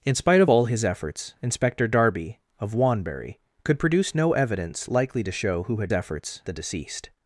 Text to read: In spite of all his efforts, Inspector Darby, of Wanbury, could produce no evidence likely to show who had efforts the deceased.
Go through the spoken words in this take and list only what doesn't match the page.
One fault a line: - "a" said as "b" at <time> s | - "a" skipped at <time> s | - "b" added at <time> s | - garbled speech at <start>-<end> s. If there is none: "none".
none